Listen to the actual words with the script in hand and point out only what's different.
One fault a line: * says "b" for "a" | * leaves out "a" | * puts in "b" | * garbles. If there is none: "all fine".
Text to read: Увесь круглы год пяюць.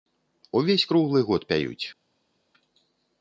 all fine